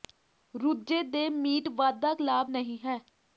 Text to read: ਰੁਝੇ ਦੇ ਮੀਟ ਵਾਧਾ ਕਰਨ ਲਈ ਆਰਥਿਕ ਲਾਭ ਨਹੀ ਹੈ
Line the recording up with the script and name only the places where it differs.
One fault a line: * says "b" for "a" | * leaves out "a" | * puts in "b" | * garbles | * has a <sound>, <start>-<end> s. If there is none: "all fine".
* leaves out "ਕਰਨ ਲਈ ਆਰਥਿਕ"